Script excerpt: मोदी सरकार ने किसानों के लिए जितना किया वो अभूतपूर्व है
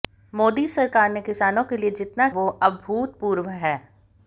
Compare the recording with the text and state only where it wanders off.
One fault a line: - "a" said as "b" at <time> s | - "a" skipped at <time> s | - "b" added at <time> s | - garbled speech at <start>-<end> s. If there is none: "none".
- "किया" skipped at 2.3 s